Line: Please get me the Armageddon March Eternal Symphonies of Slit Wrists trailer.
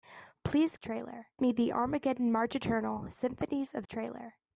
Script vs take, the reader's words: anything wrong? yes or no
yes